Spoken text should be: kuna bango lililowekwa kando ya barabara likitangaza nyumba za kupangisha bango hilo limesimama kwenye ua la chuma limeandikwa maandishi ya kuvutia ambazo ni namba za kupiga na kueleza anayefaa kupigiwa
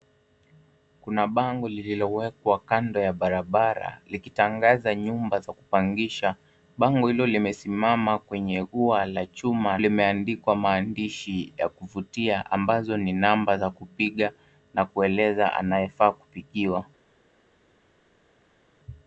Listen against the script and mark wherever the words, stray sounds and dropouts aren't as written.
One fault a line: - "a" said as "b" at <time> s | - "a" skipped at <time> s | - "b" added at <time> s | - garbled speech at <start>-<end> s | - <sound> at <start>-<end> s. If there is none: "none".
none